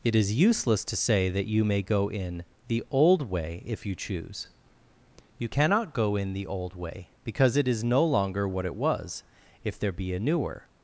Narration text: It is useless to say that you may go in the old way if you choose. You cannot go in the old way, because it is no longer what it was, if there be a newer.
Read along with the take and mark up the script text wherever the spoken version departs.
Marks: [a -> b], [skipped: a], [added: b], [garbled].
It is useless to say that you may go in the old way if you choose. You cannot go in the old way, because it is no longer what it was, if there be a newer.